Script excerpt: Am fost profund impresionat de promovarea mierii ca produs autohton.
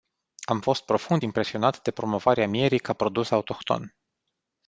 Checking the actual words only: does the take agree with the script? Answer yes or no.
yes